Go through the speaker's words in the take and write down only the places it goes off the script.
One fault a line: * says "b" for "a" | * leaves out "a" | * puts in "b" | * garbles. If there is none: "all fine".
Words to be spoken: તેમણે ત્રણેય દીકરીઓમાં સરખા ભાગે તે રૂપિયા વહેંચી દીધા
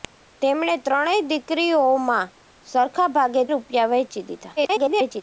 * leaves out "તે"
* garbles